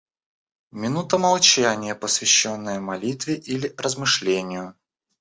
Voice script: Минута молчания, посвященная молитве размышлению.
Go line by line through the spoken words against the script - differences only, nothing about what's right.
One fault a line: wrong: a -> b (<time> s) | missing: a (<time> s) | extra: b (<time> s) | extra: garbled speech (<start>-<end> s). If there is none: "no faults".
extra: или (3.3 s)